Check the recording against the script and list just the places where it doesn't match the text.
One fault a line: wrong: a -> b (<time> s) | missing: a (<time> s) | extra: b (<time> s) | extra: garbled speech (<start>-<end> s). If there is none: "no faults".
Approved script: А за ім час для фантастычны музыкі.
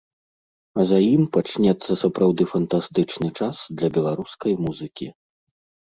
extra: пачнецца сапраўды фантастычны (1.4 s)
wrong: фантастычны -> беларускай (4.0 s)